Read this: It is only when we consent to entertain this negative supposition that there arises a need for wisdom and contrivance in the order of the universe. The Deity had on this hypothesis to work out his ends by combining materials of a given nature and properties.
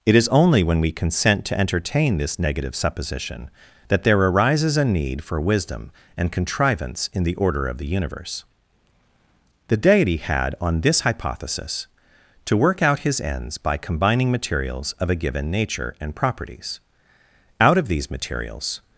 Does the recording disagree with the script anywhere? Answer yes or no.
yes